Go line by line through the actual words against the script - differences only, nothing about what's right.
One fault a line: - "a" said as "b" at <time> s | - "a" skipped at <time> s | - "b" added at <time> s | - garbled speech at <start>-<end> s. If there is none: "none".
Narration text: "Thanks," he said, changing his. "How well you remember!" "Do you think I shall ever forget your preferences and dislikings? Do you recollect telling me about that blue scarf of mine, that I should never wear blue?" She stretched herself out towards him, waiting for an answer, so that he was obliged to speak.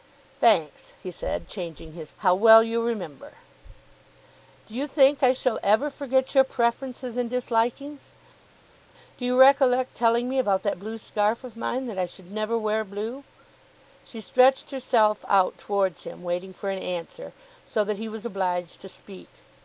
none